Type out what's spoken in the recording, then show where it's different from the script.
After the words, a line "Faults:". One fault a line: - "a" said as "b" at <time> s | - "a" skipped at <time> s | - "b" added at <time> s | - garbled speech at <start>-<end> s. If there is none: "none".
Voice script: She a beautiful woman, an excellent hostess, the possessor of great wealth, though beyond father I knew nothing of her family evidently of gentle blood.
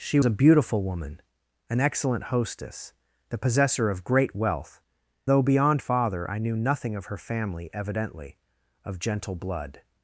She a beautiful woman, an excellent hostess, the possessor of great wealth, though beyond father I knew nothing of her family evidently of gentle blood.
Faults:
none